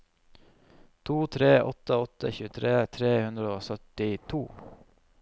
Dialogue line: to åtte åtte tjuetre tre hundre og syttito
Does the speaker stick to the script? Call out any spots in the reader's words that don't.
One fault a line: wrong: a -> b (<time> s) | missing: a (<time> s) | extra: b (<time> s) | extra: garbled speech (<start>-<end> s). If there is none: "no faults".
extra: tre (1.4 s)